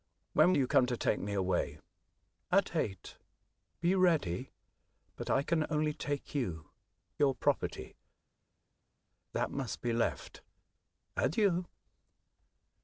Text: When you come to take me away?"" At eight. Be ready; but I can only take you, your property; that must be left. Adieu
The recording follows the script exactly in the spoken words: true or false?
true